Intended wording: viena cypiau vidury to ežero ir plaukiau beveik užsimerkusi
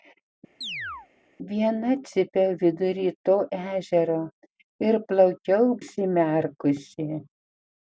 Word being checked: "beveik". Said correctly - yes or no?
no